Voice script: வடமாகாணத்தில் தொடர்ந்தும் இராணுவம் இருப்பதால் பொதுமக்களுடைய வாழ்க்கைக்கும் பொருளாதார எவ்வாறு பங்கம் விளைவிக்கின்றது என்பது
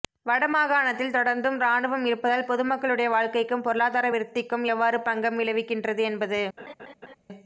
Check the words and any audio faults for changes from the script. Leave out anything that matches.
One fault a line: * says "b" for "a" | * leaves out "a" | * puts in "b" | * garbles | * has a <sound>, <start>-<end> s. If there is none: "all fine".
* puts in "விருத்திக்கும்"
* has a laugh, 6.6-7.1 s